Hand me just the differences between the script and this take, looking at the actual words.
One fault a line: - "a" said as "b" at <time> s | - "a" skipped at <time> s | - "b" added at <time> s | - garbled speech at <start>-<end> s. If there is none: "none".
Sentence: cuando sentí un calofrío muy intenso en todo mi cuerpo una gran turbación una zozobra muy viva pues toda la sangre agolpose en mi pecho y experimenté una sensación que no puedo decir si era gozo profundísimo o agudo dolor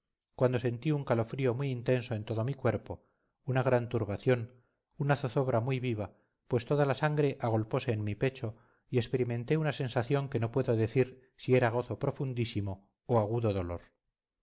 none